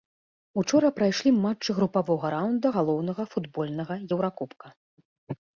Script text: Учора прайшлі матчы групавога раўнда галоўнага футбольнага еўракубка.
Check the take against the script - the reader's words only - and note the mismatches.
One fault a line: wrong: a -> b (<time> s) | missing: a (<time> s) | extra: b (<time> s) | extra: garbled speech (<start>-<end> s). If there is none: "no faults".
no faults